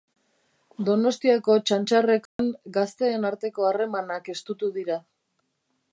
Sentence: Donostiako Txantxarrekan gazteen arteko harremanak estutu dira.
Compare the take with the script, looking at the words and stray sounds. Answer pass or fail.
fail